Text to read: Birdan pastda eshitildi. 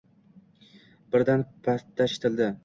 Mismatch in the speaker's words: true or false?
false